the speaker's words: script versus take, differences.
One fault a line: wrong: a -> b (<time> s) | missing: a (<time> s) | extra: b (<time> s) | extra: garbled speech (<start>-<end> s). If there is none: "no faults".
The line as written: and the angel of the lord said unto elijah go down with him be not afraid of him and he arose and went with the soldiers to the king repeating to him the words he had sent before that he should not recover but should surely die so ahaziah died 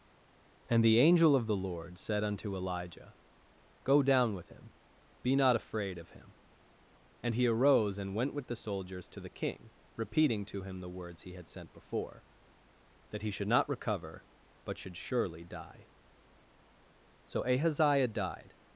no faults